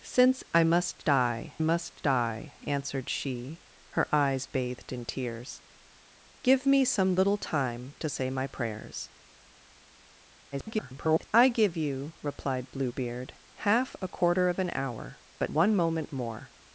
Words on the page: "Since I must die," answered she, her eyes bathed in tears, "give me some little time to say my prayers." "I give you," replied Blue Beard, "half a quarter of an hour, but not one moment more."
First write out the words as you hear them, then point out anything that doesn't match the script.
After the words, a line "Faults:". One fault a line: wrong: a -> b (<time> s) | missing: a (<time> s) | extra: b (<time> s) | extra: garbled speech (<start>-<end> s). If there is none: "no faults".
"Since I must die must die," answered she, her eyes bathed in tears, "give me some little time to say my prayers." [garbled] "I give you," replied Blue Beard, "half a quarter of an hour, but one moment more."
Faults:
extra: must die (1.6 s)
extra: garbled speech (10.5-11.3 s)
missing: not (15.5 s)